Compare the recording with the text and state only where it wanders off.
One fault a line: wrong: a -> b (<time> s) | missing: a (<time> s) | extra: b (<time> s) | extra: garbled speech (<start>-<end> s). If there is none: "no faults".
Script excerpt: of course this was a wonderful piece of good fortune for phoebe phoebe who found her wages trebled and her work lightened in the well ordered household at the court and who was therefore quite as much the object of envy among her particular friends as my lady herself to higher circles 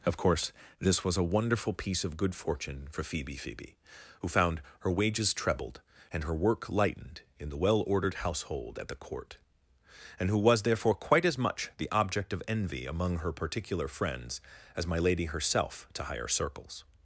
no faults